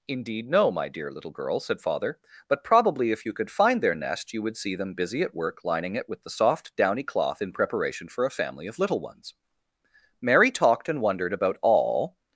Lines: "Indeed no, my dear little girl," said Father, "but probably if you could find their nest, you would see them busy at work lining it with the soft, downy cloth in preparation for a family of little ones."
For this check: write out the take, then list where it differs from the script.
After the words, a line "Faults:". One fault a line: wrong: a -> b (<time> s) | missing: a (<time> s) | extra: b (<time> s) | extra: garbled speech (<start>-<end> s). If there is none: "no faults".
"Indeed no, my dear little girl," said Father, "but probably if you could find their nest, you would see them busy at work lining it with the soft, downy cloth in preparation for a family of little ones." Mary talked and wondered about all
Faults:
extra: Mary talked and wondered about all (10.2 s)